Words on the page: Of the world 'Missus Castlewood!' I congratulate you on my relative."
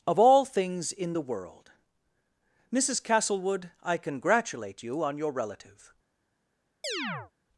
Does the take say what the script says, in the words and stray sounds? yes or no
no